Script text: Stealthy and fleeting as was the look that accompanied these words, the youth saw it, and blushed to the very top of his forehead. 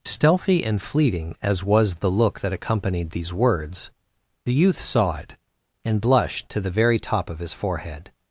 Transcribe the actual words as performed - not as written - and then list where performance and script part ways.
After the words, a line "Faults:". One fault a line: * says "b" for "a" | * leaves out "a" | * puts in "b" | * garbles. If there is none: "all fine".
Stealthy and fleeting as was the look that accompanied these words, the youth saw it, and blushed to the very top of his forehead.
Faults:
all fine